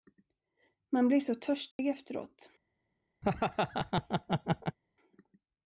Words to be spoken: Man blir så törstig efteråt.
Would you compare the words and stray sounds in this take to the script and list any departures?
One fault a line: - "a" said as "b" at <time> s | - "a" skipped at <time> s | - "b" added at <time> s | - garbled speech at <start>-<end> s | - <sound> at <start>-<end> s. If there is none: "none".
- dropout at 1.7-1.8 s
- laugh at 3.2-4.8 s